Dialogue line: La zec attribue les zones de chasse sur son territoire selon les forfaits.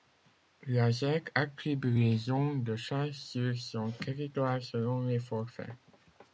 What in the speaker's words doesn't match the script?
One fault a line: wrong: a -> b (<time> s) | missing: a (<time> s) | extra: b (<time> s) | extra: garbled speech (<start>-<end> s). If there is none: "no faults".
no faults